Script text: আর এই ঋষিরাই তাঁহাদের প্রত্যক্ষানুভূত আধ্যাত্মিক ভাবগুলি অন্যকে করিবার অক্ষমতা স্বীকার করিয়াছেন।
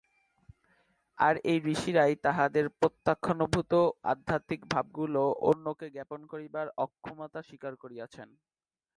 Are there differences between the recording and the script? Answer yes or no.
yes